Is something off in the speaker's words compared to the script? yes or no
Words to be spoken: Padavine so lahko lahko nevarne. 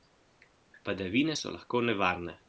yes